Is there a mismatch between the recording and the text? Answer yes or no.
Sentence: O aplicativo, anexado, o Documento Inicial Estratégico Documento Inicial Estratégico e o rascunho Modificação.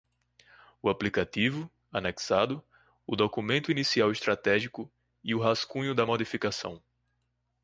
yes